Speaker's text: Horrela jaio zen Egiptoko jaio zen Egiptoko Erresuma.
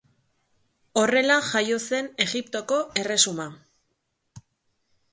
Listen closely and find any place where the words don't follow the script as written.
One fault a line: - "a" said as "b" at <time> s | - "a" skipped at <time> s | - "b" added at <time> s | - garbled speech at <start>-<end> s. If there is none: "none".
- "jaio zen Egiptoko" skipped at 2.8 s